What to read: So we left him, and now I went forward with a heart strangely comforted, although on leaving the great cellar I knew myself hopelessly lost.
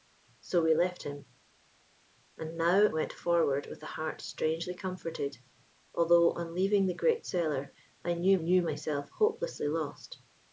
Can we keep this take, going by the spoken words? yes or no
no